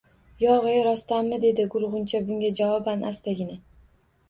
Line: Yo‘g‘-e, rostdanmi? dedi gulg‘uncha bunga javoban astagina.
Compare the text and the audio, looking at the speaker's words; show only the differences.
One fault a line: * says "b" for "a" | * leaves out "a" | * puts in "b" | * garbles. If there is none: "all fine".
all fine